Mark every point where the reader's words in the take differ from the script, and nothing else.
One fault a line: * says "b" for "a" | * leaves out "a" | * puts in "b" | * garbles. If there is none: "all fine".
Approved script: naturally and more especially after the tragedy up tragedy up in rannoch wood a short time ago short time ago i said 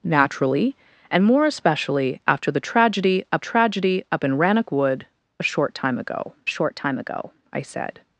all fine